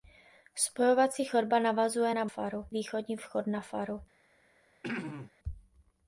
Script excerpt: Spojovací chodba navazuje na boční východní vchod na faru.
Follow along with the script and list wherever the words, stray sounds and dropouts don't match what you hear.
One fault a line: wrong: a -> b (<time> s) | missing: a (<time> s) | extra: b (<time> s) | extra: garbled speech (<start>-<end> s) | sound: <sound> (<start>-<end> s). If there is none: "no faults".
wrong: boční -> faru (2.2 s)
sound: throat clearing (4.8-5.3 s)